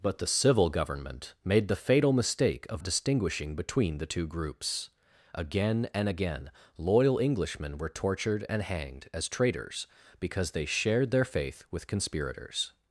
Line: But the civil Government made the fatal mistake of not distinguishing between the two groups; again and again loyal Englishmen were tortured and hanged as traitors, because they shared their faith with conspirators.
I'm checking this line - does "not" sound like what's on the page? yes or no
no